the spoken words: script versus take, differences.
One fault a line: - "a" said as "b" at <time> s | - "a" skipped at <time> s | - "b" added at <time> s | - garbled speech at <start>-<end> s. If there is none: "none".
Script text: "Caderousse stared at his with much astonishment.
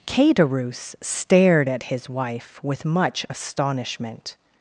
- "wife" added at 2.1 s